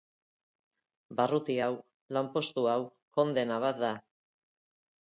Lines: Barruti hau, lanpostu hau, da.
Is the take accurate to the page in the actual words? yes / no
no